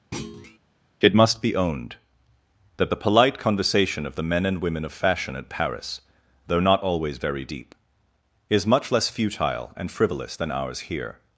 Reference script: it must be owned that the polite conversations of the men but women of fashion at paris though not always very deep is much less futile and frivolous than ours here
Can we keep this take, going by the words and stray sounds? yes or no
no